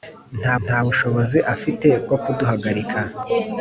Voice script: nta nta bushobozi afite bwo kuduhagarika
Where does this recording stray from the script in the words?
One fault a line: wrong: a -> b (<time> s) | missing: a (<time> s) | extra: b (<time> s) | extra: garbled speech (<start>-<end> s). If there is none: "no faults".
no faults